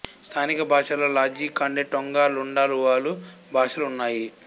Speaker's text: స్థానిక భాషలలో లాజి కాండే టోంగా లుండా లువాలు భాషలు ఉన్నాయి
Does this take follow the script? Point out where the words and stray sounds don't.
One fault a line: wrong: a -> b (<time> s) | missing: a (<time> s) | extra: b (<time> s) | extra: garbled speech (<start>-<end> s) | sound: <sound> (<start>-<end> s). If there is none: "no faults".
no faults